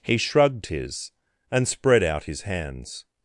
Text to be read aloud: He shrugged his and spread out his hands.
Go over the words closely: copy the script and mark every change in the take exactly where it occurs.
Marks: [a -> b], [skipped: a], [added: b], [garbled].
He shrugged his and spread out his hands.